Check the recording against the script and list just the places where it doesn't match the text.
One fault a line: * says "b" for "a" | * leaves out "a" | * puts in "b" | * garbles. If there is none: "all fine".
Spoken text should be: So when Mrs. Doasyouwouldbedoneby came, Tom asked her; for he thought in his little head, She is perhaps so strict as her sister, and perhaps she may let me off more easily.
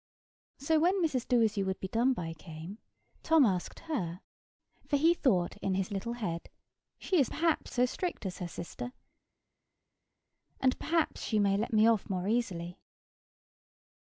all fine